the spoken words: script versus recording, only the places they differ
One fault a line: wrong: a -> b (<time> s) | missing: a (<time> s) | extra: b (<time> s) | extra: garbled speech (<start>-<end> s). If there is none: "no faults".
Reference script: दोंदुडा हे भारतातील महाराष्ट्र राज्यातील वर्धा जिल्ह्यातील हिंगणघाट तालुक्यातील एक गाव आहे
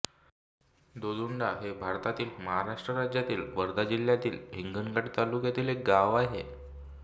no faults